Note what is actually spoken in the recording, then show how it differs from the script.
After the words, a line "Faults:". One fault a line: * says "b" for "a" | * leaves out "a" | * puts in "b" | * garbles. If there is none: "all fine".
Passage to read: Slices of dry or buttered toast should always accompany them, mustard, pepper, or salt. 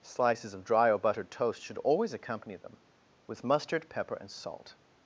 Slices of dry or buttered toast should always accompany them, with mustard, pepper, and salt.
Faults:
* puts in "with"
* says "and" for "or"